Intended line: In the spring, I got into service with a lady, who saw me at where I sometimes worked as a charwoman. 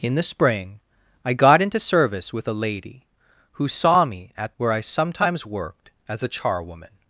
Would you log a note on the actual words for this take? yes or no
no